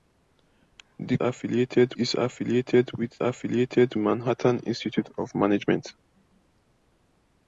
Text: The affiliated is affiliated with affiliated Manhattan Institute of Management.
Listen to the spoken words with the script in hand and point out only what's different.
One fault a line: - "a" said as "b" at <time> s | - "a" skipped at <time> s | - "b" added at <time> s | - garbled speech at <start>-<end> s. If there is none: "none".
none